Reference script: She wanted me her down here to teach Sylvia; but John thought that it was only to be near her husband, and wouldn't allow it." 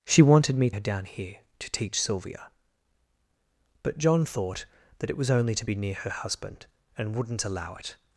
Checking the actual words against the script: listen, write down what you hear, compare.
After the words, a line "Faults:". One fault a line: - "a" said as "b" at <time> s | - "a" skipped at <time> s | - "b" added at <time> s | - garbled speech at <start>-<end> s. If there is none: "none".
She wanted me her down here to teach Sylvia; but John thought that it was only to be near her husband, and wouldn't allow it."
Faults:
none